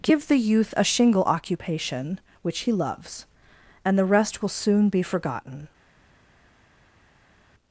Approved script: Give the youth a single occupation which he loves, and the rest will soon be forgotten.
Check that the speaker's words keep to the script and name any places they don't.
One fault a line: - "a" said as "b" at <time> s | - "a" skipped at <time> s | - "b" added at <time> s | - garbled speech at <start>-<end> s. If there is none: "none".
- "single" said as "shingle" at 0.8 s